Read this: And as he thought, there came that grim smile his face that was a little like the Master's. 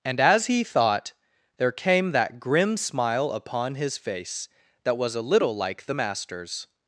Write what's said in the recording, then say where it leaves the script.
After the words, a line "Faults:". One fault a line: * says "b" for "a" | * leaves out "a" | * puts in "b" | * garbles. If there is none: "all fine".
And as he thought, there came that grim smile upon his face that was a little like the Master's.
Faults:
* puts in "upon"